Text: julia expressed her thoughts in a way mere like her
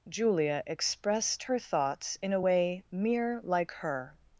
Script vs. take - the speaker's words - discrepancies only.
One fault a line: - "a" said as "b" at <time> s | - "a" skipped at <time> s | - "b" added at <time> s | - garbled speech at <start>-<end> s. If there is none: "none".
none